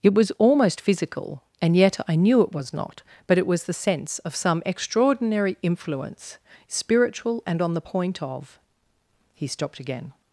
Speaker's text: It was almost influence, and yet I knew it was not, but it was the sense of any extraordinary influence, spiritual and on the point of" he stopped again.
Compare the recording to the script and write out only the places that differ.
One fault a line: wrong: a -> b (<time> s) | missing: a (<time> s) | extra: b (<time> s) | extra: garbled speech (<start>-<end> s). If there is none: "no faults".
wrong: influence -> physical (0.8 s)
wrong: any -> some (4.3 s)